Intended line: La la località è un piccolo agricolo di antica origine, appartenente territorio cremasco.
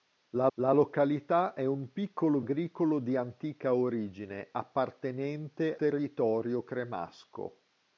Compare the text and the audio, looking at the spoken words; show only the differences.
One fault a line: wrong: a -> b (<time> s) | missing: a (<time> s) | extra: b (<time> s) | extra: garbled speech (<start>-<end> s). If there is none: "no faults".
no faults